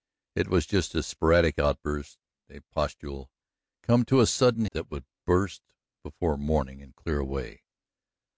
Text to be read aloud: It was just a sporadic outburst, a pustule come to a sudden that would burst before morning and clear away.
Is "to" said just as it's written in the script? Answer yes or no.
yes